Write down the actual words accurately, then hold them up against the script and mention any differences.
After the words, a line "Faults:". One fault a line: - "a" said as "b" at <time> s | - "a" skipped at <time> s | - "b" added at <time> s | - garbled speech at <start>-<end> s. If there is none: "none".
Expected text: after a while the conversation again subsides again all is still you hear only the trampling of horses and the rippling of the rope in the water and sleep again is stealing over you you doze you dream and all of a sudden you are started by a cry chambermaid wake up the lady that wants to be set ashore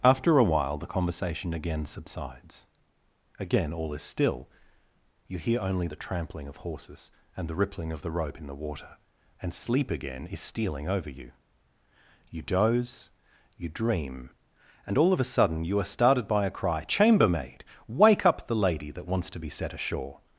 after a while the conversation again subsides again all is still you hear only the trampling of horses and the rippling of the rope in the water and sleep again is stealing over you you doze you dream and all of a sudden you are started by a cry chambermaid wake up the lady that wants to be set ashore
Faults:
none